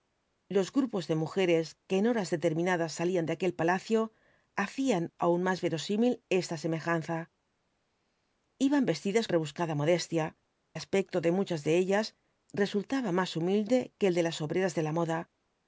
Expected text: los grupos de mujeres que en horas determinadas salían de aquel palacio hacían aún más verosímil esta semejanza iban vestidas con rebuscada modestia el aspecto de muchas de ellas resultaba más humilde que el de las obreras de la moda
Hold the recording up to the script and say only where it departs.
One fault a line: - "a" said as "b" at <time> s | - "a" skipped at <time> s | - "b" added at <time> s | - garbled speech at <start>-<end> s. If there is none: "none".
- "con" skipped at 9.3 s
- "el" skipped at 10.2 s